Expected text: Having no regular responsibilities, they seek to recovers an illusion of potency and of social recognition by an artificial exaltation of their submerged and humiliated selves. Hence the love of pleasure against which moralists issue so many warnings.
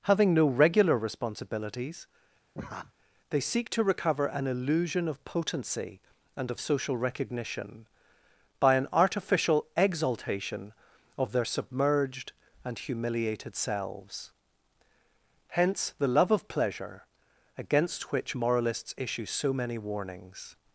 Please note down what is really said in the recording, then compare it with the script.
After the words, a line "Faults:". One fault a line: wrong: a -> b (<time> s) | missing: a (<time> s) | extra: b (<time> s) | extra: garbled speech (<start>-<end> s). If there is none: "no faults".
Having no regular responsibilities, they seek to recover an illusion of potency and of social recognition by an artificial exaltation of their submerged and humiliated selves. Hence the love of pleasure against which moralists issue so many warnings.
Faults:
wrong: recovers -> recover (3.8 s)